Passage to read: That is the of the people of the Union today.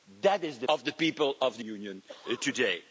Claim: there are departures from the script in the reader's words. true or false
false